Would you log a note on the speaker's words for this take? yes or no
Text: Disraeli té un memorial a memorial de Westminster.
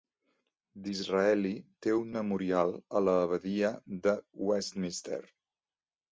yes